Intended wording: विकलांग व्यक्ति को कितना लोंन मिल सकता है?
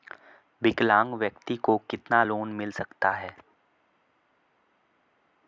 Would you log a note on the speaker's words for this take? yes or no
no